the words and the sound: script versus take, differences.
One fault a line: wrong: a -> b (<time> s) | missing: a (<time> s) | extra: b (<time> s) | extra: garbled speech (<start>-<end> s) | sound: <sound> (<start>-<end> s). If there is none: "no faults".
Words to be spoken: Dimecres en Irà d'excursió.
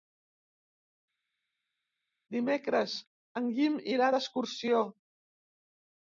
extra: Guim (3.6 s)